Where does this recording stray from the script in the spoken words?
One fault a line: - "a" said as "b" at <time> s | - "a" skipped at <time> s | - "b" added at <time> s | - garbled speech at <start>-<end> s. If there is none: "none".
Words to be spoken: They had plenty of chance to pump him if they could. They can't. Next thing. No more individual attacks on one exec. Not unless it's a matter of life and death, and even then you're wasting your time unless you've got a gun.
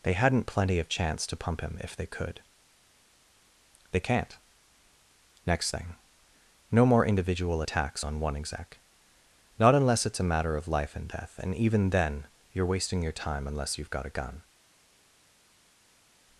- "had" said as "hadn't" at 0.1 s